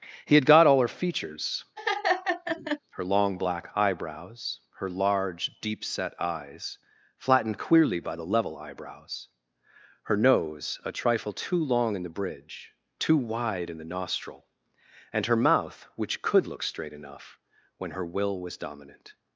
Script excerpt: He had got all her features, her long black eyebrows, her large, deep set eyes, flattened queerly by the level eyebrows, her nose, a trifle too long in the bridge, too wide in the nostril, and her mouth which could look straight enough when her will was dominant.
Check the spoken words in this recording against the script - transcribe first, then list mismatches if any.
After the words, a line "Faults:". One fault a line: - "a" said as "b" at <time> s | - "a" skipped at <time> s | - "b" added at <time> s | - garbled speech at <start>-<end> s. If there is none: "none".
He had got all her features, her long black eyebrows, her large, deep set eyes, flattened queerly by the level eyebrows, her nose, a trifle too long in the bridge, too wide in the nostril, and her mouth which could look straight enough when her will was dominant.
Faults:
none